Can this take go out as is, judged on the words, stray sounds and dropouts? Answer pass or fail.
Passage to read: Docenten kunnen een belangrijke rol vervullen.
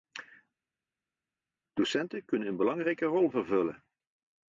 pass